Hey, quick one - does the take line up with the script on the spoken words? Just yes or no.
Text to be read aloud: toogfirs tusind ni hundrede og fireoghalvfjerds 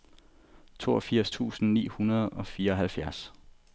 yes